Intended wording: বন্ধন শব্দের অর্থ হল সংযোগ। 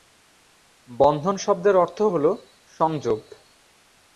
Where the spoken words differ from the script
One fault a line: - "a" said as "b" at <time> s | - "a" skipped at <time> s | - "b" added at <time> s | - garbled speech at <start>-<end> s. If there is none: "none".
none